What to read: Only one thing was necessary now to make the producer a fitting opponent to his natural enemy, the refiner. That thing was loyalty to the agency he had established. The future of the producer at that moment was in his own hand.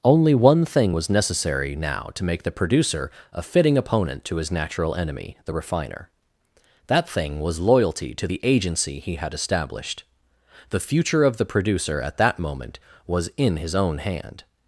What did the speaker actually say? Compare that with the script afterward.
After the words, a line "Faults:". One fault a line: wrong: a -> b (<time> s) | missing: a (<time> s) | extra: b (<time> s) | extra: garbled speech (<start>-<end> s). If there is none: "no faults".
Only one thing was necessary now to make the producer a fitting opponent to his natural enemy, the refiner. That thing was loyalty to the agency he had established. The future of the producer at that moment was in his own hand.
Faults:
no faults